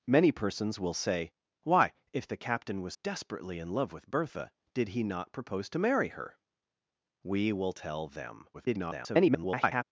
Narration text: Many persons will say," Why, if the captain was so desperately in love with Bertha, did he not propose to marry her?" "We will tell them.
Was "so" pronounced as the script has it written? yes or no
no